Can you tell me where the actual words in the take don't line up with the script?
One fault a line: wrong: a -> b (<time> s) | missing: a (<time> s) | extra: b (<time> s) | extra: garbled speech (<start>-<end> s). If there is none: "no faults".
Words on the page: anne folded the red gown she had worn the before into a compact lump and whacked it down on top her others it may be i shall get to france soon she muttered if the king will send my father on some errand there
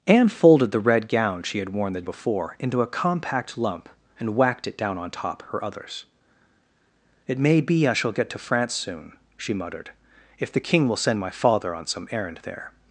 no faults